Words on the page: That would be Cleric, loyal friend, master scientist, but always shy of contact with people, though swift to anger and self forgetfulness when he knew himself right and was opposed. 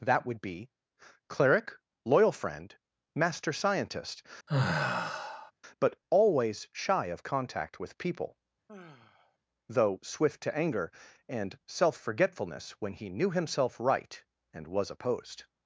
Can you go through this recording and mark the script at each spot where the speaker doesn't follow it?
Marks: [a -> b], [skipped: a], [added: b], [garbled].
That would be Cleric, loyal friend, master scientist, but always shy of contact with people, though swift to anger and self forgetfulness when he knew himself right and was opposed.